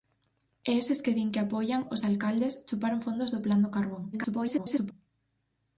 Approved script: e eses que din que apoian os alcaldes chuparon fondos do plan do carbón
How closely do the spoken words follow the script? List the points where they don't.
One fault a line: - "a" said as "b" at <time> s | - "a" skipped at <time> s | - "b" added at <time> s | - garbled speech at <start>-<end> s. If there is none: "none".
- garbled speech at 4.1-4.9 s